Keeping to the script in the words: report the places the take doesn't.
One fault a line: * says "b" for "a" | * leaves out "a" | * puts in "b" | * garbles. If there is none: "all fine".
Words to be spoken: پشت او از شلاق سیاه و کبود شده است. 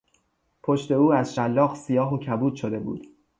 * says "بود" for "است"